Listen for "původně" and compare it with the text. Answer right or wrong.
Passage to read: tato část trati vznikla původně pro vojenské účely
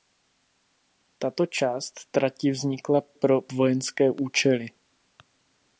wrong